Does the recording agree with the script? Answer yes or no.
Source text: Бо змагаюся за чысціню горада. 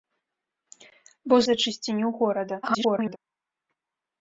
no